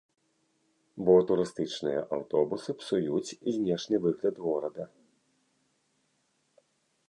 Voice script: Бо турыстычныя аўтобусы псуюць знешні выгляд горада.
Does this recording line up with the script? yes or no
yes